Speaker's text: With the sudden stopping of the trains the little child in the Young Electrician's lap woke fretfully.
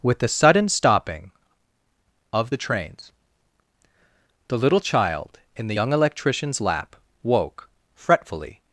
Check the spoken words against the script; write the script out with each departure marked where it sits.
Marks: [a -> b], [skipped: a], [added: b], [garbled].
With the sudden stopping of the trains the little child in the Young Electrician's lap woke fretfully.